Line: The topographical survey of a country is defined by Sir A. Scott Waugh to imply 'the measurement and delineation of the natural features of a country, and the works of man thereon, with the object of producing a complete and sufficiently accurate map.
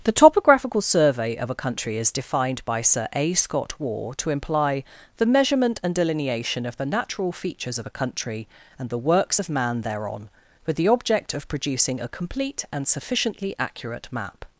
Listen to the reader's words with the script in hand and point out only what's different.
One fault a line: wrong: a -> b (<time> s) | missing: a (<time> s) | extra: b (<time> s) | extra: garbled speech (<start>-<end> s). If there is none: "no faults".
no faults